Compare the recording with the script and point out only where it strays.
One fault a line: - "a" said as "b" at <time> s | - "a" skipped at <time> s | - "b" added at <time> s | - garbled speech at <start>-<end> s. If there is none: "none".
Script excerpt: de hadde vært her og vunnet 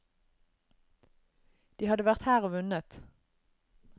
none